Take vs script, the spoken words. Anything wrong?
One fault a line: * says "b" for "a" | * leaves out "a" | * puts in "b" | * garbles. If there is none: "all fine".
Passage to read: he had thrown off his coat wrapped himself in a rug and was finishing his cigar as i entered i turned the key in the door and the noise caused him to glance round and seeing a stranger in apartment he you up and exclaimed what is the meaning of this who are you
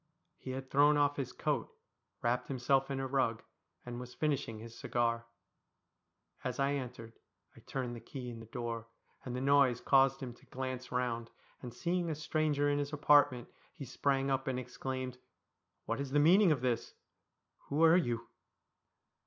* puts in "his"
* says "sprang" for "you"